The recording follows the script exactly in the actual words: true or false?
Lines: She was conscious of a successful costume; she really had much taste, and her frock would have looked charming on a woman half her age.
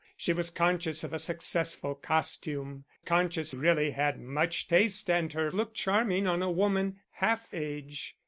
false